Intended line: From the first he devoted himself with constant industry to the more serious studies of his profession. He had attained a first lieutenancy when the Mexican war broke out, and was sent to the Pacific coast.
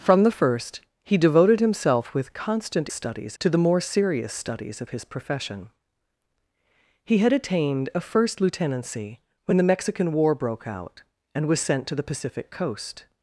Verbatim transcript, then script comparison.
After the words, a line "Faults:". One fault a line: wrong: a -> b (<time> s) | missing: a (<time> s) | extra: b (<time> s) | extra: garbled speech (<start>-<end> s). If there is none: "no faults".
From the first he devoted himself with constant studies to the more serious studies of his profession. He had attained a first lieutenancy when the Mexican war broke out, and was sent to the Pacific coast.
Faults:
wrong: industry -> studies (2.9 s)